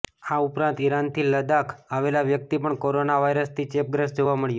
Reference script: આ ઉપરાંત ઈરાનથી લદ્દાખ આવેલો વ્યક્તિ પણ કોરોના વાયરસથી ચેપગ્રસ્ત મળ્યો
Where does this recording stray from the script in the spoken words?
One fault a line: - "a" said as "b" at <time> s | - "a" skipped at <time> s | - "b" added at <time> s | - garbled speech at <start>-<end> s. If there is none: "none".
- "જોવા" added at 4.2 s